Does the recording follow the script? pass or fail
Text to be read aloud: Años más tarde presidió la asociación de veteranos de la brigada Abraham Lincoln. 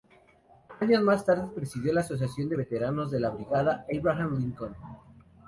pass